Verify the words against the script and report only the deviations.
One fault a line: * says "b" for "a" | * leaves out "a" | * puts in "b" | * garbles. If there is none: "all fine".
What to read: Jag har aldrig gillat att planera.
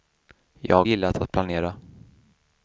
* leaves out "har aldrig"